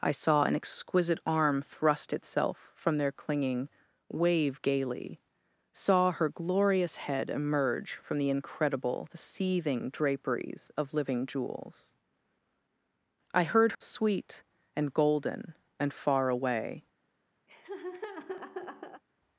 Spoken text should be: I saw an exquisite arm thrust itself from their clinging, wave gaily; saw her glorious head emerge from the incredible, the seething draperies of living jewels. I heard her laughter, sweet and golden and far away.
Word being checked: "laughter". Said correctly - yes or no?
no